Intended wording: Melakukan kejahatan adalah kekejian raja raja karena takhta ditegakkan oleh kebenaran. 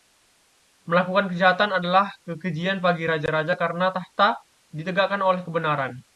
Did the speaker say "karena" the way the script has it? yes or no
yes